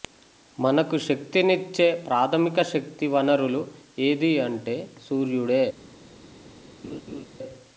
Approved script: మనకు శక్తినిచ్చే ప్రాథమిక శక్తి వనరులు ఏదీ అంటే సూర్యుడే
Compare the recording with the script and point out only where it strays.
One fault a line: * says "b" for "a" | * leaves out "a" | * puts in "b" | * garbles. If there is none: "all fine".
all fine